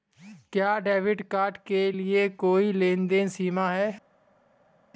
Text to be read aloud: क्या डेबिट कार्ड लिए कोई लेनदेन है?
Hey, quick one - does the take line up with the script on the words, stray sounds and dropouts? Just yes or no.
no